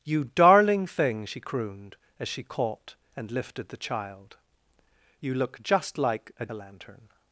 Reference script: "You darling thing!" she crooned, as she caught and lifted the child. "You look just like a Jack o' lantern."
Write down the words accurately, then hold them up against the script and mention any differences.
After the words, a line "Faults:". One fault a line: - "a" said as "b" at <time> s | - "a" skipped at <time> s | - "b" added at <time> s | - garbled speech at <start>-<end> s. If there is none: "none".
"You darling thing!" she crooned, as she caught and lifted the child. "You look just like a O' lantern."
Faults:
- "Jack" skipped at 6.5 s